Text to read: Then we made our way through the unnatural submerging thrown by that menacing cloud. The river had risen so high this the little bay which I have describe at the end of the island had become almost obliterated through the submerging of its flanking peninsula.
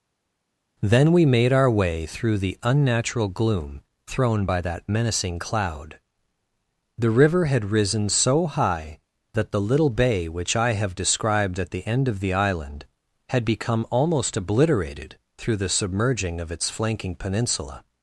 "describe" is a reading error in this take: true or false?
true